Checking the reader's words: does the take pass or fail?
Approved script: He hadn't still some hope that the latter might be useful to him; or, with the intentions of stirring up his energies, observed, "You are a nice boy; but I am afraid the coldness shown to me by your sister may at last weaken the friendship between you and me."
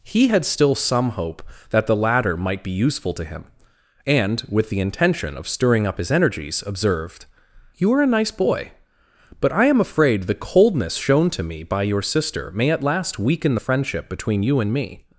fail